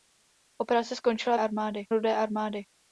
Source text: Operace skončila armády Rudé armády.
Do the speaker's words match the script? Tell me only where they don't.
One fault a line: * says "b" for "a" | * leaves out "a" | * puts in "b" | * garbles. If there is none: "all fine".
all fine